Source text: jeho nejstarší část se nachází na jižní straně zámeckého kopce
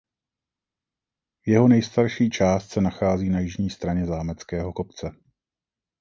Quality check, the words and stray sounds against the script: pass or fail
pass